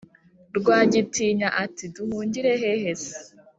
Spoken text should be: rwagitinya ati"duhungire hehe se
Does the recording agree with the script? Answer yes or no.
yes